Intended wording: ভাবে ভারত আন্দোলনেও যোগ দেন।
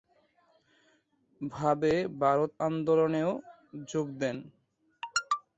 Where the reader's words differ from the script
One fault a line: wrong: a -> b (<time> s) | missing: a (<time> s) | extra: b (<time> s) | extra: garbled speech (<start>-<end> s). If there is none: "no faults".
no faults